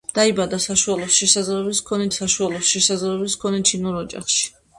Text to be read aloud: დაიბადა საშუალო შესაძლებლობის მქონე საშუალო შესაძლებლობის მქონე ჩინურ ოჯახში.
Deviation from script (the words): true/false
false